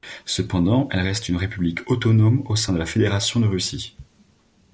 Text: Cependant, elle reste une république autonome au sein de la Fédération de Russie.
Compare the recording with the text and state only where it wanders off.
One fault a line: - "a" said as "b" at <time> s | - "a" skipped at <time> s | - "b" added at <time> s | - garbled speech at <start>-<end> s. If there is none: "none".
none